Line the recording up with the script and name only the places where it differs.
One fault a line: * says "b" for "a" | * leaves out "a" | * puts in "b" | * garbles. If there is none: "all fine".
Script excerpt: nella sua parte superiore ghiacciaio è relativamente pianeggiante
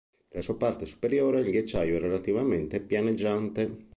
* puts in "il"